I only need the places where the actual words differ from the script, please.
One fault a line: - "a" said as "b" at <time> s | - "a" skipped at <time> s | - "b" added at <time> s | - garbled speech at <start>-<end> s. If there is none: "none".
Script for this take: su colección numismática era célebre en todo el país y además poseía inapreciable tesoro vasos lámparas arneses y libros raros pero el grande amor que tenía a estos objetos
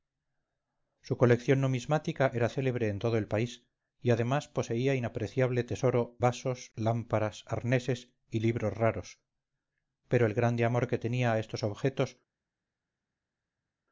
none